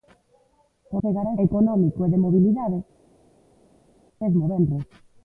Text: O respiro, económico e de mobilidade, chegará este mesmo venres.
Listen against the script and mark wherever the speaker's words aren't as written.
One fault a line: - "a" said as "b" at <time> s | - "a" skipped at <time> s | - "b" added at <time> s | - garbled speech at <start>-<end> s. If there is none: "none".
- "respiro" said as "chegará" at 1.0 s
- "chegará este" skipped at 2.8 s